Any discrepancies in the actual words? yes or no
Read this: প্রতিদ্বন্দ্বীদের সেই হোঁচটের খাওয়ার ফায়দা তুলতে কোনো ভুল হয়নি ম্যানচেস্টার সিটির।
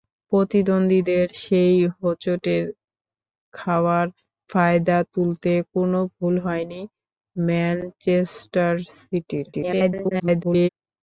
yes